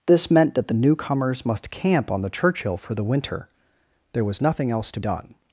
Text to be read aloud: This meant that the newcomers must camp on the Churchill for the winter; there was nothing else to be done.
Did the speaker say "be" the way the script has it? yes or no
no